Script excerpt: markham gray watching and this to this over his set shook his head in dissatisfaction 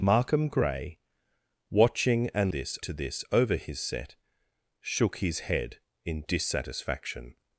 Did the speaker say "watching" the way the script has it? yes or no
yes